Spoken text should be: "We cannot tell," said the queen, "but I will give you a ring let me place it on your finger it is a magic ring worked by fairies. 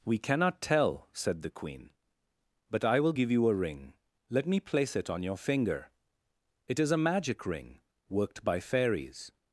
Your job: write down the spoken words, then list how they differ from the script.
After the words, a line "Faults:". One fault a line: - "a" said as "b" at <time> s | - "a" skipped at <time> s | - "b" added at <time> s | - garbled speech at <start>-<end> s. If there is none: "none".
"We cannot tell," said the queen, "but I will give you a ring let me place it on your finger it is a magic ring worked by fairies.
Faults:
none